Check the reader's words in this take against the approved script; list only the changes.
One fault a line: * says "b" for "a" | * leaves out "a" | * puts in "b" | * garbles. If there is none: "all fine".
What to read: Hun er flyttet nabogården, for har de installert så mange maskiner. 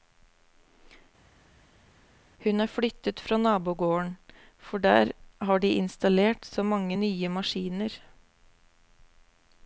* puts in "fra"
* puts in "der"
* puts in "nye"